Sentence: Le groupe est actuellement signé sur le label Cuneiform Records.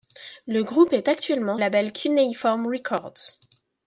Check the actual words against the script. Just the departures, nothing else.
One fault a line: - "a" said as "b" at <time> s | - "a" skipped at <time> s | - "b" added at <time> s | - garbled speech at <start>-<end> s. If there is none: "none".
- "signé sur le" skipped at 1.6 s